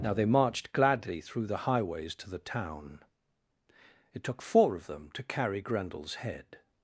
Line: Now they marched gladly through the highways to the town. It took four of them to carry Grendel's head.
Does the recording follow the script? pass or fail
pass